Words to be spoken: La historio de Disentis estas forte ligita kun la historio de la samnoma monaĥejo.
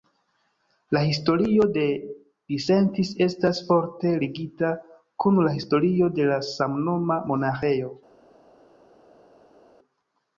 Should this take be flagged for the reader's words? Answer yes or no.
no